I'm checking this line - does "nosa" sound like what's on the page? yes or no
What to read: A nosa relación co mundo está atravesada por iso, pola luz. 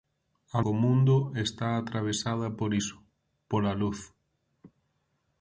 no